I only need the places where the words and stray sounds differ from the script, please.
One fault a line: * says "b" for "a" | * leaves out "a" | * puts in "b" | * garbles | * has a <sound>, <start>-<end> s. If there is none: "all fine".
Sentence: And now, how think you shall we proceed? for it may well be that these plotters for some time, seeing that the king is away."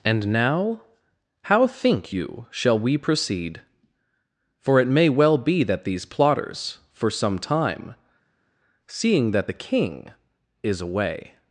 all fine